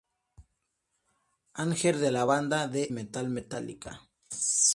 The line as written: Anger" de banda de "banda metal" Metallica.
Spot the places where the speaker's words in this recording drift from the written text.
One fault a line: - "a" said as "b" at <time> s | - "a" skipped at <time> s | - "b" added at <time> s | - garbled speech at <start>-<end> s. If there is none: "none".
- "la" added at 2.1 s
- "banda" said as "heavy" at 2.8 s